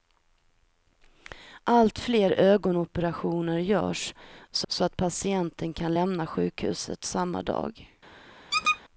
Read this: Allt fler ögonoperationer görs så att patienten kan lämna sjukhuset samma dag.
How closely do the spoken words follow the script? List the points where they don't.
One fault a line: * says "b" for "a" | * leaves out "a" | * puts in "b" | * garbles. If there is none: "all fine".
* puts in "så"